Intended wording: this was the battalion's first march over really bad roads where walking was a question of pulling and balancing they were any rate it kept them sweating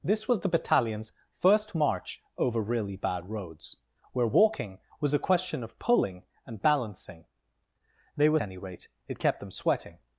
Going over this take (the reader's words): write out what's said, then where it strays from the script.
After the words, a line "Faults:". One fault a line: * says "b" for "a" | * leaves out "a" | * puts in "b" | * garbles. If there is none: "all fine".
this was the battalion's first march over really bad roads where walking was a question of pulling and balancing they were any rate it kept them sweating
Faults:
all fine